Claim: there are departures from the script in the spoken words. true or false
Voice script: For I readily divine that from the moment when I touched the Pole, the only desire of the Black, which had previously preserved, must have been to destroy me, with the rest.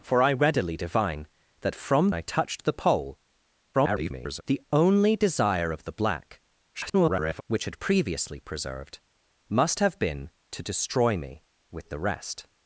true